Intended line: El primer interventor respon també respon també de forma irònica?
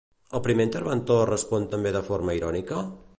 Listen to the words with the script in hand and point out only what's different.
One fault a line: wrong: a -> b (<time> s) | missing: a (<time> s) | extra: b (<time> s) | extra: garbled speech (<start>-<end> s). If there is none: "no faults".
missing: respon també (1.9 s)